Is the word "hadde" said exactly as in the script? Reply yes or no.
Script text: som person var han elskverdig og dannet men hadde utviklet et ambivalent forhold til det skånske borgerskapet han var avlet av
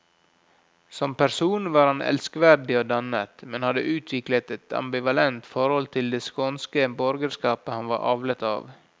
yes